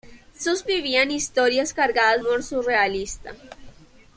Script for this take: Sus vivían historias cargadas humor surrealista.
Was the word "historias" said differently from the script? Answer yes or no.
no